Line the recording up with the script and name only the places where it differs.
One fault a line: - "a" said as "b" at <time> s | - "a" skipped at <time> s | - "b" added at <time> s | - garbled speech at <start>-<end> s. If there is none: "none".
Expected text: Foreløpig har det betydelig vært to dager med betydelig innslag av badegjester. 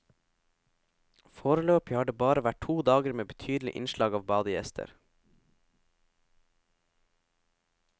- "betydelig" said as "bare" at 2.2 s